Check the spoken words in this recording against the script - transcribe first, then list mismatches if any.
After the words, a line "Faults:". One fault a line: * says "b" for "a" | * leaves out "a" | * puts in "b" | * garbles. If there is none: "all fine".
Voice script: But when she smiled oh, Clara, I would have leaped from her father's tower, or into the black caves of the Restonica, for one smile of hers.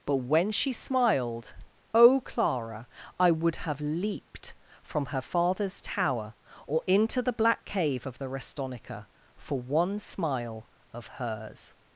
But when she smiled oh, Clara, I would have leaped from her father's tower, or into the black cave of the Restonica, for one smile of hers.
Faults:
* says "cave" for "caves"